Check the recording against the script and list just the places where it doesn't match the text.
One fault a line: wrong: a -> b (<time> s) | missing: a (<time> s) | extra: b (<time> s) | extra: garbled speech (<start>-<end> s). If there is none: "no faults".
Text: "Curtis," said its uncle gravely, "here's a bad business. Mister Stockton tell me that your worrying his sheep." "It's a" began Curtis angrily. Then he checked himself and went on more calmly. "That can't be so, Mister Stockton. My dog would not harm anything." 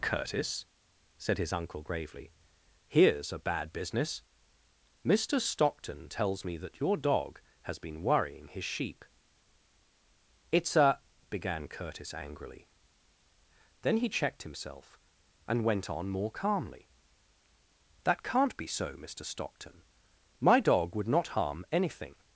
wrong: its -> his (1.4 s)
wrong: tell -> tells (6.1 s)
extra: dog has been (7.0 s)